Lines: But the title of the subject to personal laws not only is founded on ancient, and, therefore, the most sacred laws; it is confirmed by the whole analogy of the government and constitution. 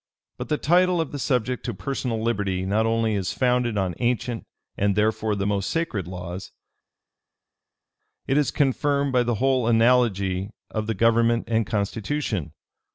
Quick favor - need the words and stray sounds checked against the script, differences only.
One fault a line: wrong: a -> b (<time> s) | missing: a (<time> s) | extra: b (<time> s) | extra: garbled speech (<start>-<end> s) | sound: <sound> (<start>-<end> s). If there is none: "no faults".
wrong: laws -> liberty (2.2 s)